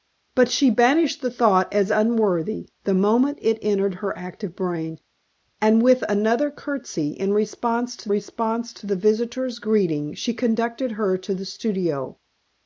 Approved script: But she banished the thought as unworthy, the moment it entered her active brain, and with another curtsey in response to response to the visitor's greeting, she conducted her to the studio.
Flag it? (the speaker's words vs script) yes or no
no